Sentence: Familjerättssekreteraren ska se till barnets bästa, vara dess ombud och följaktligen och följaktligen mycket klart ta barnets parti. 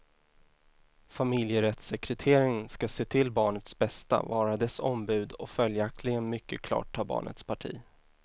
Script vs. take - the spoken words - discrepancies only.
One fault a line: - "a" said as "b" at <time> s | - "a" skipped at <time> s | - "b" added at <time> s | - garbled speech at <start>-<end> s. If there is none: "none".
- "och följaktligen" skipped at 6.3 s